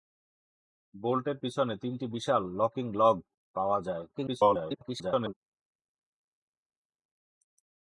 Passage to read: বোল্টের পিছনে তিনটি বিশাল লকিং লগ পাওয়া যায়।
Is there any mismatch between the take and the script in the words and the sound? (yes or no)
yes